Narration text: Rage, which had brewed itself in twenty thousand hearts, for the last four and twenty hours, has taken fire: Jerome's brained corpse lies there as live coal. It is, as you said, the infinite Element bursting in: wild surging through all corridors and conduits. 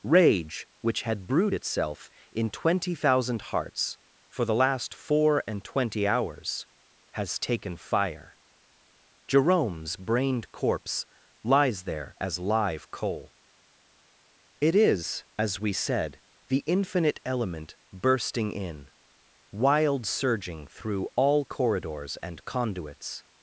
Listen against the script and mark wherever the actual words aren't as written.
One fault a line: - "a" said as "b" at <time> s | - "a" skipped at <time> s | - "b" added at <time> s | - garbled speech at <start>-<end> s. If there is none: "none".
- "you" said as "we" at 15.6 s